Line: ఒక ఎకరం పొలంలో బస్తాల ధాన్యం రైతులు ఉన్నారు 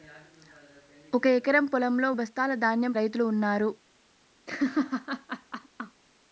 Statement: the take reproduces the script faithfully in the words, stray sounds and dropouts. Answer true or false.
false